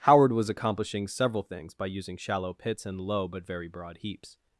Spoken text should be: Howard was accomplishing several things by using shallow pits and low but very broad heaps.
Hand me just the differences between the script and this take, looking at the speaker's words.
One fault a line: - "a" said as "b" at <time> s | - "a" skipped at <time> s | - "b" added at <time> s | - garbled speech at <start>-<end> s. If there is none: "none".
none